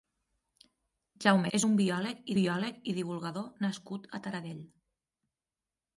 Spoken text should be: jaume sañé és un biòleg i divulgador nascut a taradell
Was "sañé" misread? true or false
true